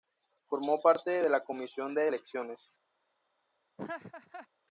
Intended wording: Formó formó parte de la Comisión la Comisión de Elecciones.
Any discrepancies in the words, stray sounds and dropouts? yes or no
yes